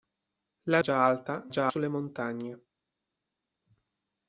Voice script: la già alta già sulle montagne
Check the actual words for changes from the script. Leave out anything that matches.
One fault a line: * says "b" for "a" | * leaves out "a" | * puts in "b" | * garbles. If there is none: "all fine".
all fine